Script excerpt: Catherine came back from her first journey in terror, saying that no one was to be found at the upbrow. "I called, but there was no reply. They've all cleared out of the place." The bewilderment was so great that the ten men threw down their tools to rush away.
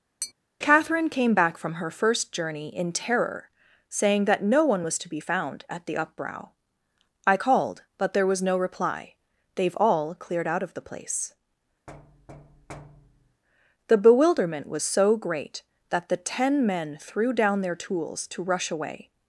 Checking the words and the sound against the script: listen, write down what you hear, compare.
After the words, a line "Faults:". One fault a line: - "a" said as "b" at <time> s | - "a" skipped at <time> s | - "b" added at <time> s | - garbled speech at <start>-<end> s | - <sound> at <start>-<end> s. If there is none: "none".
Catherine came back from her first journey in terror, saying that no one was to be found at the upbrow. "I called, but there was no reply. They've all cleared out of the place." The bewilderment was so great that the ten men threw down their tools to rush away.
Faults:
- tap at 0.2-0.3 s
- thud at 11.9-13.4 s